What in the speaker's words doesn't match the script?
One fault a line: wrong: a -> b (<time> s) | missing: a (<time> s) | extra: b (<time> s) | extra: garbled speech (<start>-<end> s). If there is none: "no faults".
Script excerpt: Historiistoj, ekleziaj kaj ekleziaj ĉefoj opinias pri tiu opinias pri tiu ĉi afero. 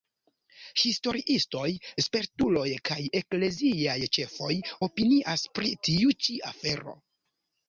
wrong: ekleziaj -> spertuloj (2.0 s)
missing: opinias pri tiu (6.1 s)